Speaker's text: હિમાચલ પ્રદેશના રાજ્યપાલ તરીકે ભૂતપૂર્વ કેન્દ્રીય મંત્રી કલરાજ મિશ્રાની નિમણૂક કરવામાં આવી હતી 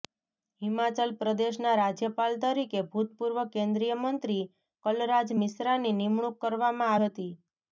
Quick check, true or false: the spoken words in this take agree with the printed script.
false